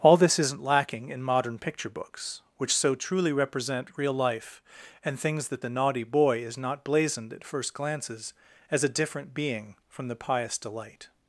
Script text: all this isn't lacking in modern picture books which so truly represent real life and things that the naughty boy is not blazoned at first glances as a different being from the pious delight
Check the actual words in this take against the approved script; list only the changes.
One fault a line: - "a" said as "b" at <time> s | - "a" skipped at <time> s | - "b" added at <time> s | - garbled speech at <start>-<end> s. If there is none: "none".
none